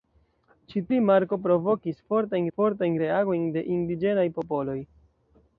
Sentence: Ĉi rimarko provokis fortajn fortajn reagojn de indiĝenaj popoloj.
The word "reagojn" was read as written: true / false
true